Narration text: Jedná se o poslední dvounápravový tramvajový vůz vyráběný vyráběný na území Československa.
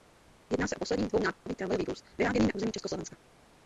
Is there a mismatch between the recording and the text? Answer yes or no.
yes